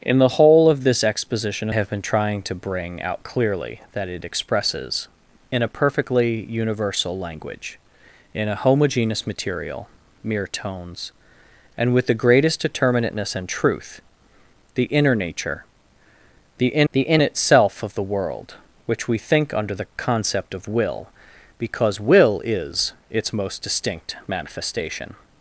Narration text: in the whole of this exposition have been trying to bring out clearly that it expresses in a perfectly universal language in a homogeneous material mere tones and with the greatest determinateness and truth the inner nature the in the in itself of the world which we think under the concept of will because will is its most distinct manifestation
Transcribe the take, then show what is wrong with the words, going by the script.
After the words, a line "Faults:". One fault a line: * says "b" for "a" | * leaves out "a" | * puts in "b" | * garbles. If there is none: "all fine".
in the whole of this exposition have been trying to bring out clearly that it expresses in a perfectly universal language in a homogeneous material mere tones and with the greatest determinateness and truth the inner nature the in the in itself of the world which we think under the concept of will because will is its most distinct manifestation
Faults:
all fine